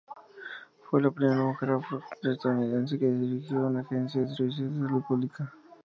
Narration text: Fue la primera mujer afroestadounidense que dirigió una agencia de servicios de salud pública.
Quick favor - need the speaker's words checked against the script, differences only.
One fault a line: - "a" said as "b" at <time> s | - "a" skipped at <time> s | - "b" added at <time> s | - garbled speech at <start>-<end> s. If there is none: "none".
none